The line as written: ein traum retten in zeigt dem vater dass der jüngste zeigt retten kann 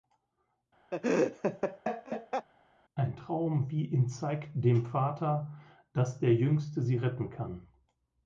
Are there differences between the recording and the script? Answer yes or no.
yes